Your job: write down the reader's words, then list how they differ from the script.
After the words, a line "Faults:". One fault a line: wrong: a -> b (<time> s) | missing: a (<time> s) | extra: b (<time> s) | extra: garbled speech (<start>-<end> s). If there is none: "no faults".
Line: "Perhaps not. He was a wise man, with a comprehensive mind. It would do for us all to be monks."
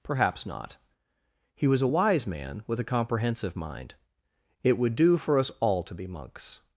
"Perhaps not. He was a wise man, with a comprehensive mind. It would do for us all to be monks."
Faults:
no faults